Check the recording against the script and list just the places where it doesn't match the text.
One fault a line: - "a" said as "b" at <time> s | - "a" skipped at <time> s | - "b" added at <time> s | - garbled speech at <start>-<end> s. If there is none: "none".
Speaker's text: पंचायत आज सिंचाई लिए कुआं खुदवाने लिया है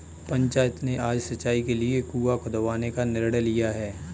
- "ने" added at 0.8 s
- "के" added at 1.6 s
- "का निर्णय" added at 2.9 s